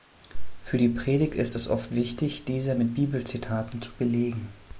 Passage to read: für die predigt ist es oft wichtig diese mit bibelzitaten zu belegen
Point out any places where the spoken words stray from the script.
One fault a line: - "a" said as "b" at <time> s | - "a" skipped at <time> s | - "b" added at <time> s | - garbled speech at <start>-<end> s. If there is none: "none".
none